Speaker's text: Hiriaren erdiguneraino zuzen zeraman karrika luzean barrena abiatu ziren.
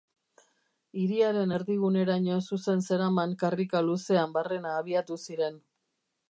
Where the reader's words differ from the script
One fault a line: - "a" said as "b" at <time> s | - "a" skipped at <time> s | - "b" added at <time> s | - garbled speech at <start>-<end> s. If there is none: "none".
none